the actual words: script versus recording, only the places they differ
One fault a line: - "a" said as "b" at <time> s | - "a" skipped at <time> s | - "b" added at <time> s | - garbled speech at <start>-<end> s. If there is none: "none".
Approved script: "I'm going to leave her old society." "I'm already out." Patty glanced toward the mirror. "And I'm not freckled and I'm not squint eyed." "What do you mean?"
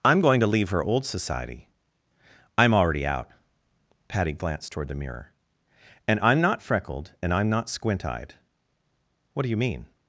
none